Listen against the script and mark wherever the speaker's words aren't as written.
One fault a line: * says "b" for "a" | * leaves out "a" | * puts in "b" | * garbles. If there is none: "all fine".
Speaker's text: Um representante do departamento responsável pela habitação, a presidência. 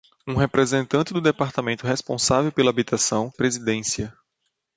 all fine